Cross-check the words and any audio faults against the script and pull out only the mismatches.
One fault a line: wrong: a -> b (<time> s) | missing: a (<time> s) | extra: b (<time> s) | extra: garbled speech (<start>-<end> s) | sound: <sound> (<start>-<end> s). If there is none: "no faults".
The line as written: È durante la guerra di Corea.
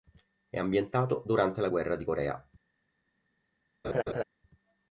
extra: ambientato (0.6 s)
sound: laugh (3.8-4.2 s)